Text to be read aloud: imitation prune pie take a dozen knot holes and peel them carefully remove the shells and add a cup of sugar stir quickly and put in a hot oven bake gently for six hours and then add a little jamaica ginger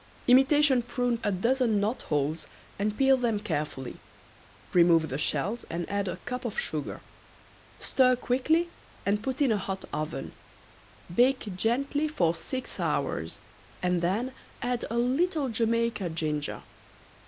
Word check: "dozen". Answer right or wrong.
right